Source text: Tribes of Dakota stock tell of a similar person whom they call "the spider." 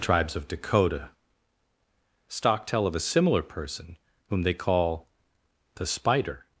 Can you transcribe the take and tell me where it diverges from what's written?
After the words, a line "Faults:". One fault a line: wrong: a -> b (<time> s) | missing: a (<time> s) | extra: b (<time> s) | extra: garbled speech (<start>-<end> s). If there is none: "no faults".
Tribes of Dakota stock tell of a similar person whom they call "the spider."
Faults:
no faults